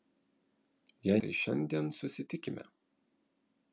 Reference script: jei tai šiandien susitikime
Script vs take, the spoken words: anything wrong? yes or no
no